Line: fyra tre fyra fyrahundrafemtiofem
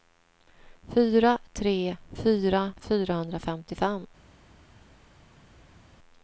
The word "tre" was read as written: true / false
true